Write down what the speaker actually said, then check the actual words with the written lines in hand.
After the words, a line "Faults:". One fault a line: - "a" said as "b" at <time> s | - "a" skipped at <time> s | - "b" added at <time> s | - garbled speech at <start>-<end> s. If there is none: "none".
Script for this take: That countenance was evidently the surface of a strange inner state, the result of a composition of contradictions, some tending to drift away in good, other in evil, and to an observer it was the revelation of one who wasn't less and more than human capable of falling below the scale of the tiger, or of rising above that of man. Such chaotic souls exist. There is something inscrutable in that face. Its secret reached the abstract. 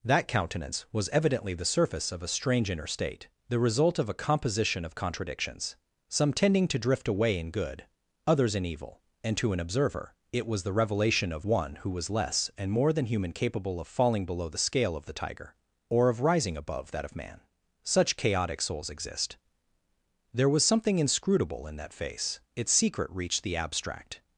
That countenance was evidently the surface of a strange inner state, the result of a composition of contradictions, some tending to drift away in good, others in evil, and to an observer it was the revelation of one who was less and more than human capable of falling below the scale of the tiger, or of rising above that of man. Such chaotic souls exist. There was something inscrutable in that face. Its secret reached the abstract.
Faults:
- "other" said as "others" at 8.2 s
- "wasn't" said as "was" at 11.9 s
- "is" said as "was" at 20.5 s